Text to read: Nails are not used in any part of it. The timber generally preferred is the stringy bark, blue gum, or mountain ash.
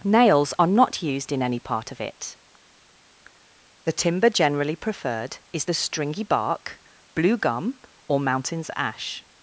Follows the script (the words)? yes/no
no